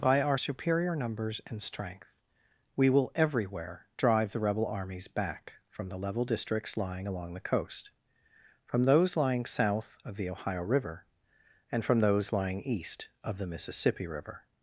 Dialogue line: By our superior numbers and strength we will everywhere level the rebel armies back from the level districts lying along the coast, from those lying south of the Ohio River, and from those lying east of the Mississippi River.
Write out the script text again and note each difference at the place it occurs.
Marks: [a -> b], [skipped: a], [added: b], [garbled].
By our superior numbers and strength we will everywhere [level -> drive] the rebel armies back from the level districts lying along the coast, from those lying south of the Ohio River, and from those lying east of the Mississippi River.